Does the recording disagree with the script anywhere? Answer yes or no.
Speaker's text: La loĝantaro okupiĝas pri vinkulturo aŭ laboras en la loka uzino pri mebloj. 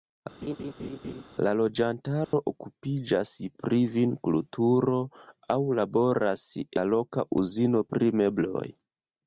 yes